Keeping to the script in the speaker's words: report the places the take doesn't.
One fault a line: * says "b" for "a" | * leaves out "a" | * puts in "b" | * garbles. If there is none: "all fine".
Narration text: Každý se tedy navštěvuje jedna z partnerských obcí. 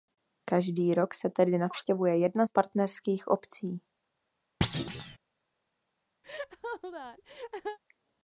* puts in "rok"